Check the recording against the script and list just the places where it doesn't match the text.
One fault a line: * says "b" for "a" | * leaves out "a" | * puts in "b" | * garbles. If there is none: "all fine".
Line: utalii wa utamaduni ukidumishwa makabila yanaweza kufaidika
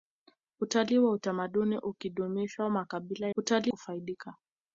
* says "utalii" for "yanaweza"